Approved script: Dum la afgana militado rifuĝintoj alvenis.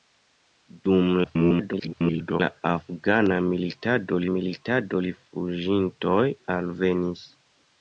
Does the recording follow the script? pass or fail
fail